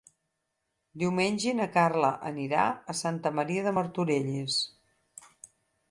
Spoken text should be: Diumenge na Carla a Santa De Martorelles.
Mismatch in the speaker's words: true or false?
true